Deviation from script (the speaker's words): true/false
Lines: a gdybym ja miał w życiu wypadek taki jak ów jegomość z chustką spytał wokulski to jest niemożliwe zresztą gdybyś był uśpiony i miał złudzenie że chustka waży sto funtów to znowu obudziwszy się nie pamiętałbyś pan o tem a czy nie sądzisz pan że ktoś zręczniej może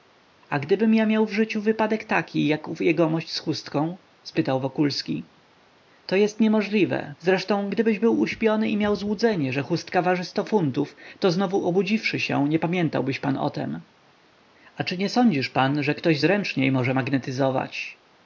false